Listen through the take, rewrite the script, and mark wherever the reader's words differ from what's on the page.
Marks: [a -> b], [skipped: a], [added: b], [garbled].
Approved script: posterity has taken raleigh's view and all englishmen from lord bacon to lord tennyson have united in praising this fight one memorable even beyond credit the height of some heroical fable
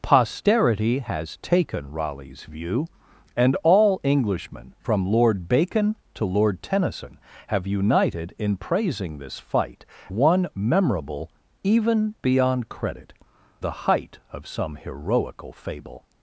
posterity has taken raleigh's view and all englishmen from lord bacon to lord tennyson have united in praising this fight one memorable even beyond credit the height of some heroical fable